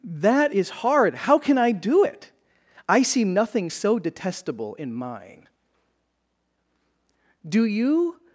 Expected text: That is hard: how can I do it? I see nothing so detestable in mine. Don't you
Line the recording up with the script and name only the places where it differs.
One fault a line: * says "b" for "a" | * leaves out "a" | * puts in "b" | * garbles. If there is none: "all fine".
* says "Do" for "Don't"